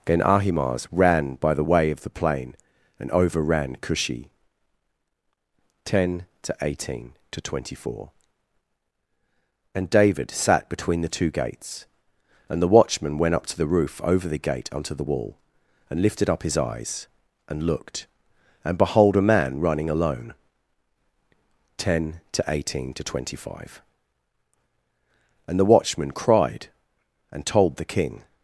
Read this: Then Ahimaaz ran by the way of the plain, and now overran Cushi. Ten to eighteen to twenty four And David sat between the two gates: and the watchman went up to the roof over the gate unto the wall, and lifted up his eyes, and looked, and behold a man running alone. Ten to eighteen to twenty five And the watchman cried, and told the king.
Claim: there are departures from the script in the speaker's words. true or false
true